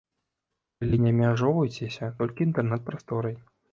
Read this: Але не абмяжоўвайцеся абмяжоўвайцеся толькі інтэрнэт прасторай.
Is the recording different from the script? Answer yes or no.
yes